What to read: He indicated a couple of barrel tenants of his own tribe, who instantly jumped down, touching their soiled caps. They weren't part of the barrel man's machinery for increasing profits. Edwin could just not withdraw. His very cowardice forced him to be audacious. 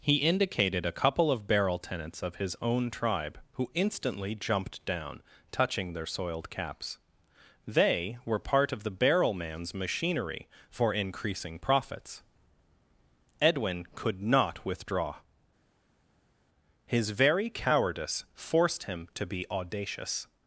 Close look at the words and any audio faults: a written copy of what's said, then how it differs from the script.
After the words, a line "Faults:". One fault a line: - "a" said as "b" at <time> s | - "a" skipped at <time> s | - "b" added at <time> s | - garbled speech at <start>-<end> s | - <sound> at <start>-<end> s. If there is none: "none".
He indicated a couple of barrel tenants of his own tribe, who instantly jumped down, touching their soiled caps. They were part of the barrel man's machinery for increasing profits. Edwin could not withdraw. His very cowardice forced him to be audacious.
Faults:
- "weren't" said as "were" at 8.2 s
- "just" skipped at 14.2 s